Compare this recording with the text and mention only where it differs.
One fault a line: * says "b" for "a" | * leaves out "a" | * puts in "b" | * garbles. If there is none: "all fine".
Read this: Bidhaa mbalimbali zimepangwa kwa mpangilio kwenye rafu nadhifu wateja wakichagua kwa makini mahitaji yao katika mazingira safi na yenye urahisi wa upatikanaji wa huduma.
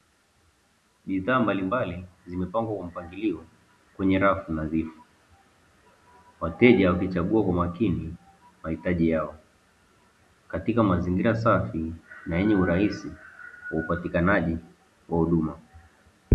all fine